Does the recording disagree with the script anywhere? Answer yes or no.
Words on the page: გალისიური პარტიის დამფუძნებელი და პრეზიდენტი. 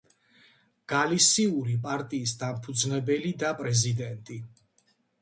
no